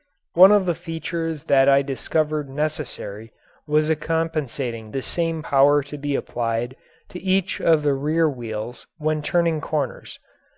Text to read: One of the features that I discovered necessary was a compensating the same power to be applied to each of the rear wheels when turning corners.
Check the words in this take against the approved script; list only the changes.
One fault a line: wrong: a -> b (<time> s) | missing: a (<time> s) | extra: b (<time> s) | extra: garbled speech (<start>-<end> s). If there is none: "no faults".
no faults